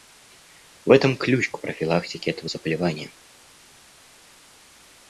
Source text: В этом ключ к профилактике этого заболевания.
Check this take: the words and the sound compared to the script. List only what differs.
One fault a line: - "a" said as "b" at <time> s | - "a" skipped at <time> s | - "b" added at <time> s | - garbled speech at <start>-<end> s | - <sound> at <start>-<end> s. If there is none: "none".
none